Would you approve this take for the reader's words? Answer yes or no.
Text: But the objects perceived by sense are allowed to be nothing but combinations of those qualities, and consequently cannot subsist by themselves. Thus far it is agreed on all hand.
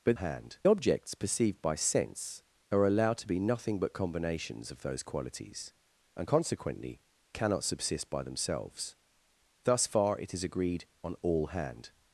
no